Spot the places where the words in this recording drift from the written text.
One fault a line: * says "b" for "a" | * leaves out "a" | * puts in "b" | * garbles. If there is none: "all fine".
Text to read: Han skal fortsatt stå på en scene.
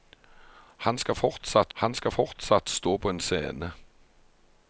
* puts in "han skal fortsatt"